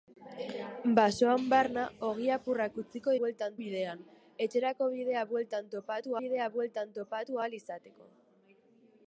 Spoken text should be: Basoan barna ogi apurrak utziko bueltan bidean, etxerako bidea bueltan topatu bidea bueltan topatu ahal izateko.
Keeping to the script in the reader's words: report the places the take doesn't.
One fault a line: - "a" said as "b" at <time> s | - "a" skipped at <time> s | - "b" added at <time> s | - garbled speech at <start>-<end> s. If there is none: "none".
none